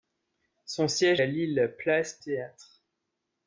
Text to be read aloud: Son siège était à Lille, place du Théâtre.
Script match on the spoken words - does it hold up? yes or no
no